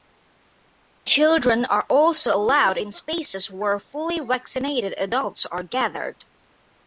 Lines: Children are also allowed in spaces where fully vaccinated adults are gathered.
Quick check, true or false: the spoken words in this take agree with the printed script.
true